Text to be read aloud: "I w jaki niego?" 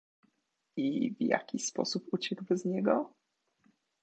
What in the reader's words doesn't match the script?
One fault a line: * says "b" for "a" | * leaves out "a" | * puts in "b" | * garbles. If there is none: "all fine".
* puts in "sposób uciekł bez"